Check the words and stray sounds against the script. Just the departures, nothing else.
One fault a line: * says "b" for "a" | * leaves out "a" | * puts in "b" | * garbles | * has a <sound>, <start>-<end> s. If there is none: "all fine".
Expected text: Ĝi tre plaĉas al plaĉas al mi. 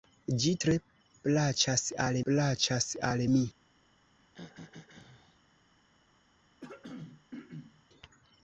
* has a throat clearing, 4.2-5.4 s
* has a throat clearing, 6.6-7.8 s